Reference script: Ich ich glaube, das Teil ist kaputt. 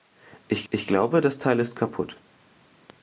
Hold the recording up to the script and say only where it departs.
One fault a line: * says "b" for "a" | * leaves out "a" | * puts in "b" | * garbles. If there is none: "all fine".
all fine